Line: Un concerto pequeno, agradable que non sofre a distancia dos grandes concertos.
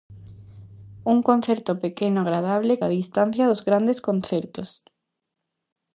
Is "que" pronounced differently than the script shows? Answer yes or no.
yes